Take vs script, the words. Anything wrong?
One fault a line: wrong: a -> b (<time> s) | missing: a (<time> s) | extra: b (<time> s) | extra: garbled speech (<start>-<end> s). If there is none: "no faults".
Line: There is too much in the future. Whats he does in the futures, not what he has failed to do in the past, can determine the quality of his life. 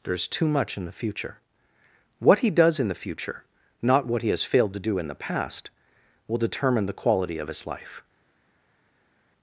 wrong: Whats -> What (2.2 s)
wrong: futures -> future (3.0 s)
wrong: can -> will (6.3 s)